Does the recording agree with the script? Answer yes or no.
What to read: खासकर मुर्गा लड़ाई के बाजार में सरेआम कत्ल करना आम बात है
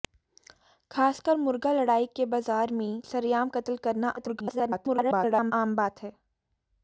no